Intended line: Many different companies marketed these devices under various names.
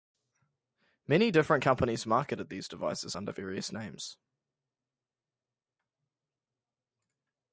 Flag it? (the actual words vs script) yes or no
no